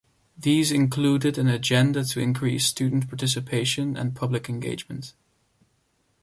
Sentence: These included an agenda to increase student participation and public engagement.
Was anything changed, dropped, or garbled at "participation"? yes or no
no